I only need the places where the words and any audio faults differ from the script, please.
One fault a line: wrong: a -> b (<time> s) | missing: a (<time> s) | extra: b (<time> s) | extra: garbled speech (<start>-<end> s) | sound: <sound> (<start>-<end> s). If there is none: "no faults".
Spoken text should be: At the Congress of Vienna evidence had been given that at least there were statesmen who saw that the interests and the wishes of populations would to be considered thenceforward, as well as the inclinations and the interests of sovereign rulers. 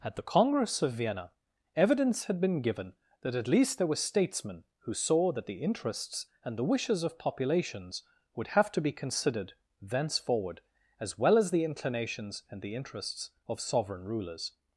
extra: have (8.5 s)